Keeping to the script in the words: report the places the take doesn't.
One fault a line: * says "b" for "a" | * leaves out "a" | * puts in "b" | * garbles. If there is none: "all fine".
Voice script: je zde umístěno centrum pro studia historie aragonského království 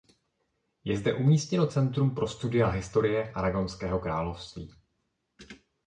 all fine